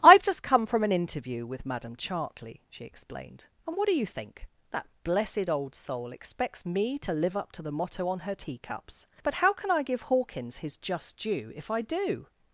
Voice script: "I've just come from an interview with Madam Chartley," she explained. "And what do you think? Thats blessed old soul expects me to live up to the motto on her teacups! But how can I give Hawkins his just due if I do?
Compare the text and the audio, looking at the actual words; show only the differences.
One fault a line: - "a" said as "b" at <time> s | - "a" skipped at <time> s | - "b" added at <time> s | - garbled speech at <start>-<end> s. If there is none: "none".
- "Thats" said as "That" at 4.7 s